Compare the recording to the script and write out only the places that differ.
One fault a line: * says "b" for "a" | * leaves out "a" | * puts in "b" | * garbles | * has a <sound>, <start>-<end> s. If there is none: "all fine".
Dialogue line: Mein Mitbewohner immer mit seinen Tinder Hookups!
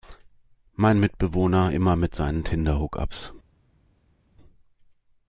all fine